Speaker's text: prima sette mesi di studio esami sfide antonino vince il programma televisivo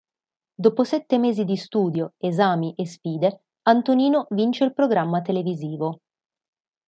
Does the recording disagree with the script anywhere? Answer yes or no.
yes